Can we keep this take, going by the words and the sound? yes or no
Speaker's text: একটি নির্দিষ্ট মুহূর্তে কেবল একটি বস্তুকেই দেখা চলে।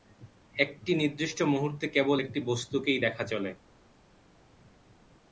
yes